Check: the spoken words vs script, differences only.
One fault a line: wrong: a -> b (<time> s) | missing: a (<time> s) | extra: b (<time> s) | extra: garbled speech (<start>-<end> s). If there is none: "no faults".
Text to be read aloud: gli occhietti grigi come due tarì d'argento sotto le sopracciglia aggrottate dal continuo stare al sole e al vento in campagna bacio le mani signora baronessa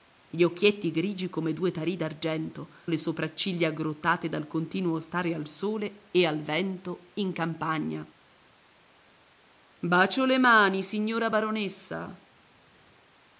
missing: sotto (2.7 s)